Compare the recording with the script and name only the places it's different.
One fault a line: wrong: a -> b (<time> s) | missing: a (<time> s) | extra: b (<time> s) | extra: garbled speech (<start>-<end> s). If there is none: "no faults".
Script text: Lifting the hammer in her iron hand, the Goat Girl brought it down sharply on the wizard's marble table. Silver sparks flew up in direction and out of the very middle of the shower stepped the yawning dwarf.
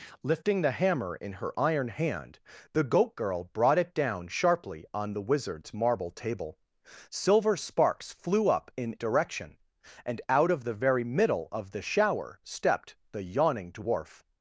no faults